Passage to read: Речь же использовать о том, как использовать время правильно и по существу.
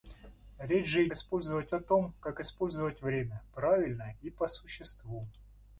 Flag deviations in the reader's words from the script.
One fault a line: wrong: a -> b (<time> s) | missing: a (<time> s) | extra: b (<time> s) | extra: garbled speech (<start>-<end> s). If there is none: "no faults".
no faults